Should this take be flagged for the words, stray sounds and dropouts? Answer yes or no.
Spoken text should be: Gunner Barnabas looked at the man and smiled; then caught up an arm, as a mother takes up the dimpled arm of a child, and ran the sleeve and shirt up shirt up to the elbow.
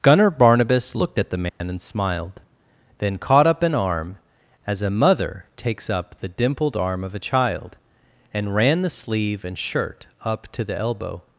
yes